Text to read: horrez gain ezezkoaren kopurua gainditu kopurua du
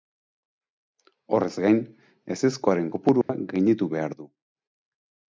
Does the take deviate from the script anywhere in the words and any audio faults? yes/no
yes